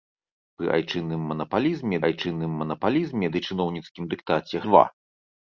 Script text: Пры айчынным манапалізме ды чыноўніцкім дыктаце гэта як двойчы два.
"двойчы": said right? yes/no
no